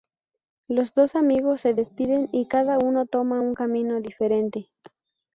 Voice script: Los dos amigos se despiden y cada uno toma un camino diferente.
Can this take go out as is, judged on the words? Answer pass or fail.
pass